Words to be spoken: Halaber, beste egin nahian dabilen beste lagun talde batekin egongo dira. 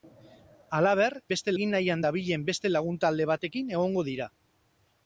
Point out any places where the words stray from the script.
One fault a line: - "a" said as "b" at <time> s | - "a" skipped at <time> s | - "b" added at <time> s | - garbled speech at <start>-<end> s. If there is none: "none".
none